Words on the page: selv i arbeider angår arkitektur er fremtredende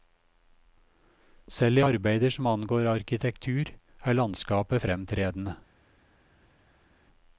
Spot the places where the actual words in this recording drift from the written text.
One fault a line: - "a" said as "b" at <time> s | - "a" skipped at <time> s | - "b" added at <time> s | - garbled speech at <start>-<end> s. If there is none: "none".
- "som" added at 2.3 s
- "landskapet" added at 4.2 s